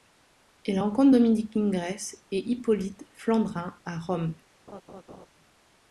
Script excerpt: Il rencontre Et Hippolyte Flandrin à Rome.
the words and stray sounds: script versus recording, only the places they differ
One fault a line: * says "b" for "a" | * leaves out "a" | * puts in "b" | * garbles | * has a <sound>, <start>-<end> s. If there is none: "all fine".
* puts in "Dominique Ingres"
* has a laugh, 4.7-5.3 s